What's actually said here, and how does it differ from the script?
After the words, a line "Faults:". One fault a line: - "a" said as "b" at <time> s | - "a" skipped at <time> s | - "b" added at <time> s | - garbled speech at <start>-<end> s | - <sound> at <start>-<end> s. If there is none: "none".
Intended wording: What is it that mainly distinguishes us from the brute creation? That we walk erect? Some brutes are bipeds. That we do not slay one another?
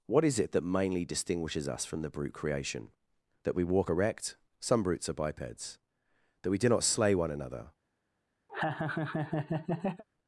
What is it that mainly distinguishes us from the brute creation? That we walk erect? Some brutes are bipeds. That we do not slay one another?
Faults:
- laugh at 8.5-10.0 s